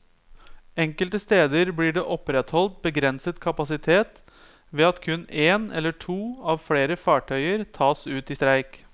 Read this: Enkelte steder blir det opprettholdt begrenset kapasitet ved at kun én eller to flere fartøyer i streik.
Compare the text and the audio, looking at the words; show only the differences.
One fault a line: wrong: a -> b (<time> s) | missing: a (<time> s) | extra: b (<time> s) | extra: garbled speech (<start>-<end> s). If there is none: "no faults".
extra: av (6.5 s)
extra: tas ut (7.8 s)